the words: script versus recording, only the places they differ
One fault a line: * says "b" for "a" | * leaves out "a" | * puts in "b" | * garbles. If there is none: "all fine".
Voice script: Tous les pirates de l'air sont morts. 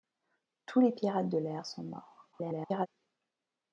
* garbles